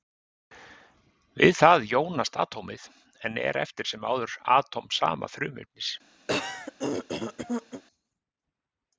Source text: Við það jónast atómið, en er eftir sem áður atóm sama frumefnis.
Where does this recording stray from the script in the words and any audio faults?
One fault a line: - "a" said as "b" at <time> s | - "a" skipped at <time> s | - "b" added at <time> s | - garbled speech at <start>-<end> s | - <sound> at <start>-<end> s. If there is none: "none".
- throat clearing at 6.3-7.8 s